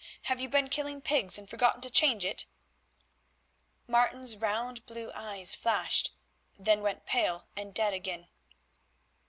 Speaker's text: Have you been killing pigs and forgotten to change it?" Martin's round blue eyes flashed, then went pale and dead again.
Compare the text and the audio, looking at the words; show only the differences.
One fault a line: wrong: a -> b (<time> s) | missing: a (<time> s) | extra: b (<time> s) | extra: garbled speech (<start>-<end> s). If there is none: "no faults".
no faults